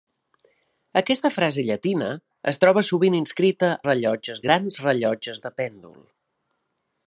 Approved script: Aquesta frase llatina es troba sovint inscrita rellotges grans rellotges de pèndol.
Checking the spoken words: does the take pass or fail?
pass